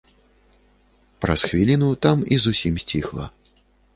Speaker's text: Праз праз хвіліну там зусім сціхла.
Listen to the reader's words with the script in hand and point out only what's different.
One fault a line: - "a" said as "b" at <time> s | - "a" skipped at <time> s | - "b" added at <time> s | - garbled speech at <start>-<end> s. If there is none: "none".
- "праз" skipped at 1.4 s
- "і" added at 2.3 s